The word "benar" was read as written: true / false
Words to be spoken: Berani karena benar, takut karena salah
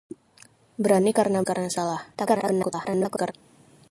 false